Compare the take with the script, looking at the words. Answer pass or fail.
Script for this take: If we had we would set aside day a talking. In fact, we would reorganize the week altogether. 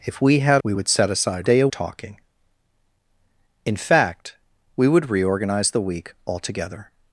pass